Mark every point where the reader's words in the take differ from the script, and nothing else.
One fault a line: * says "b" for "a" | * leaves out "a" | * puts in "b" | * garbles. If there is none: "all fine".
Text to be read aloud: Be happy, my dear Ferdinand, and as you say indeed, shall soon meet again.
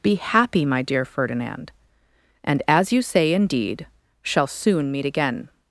all fine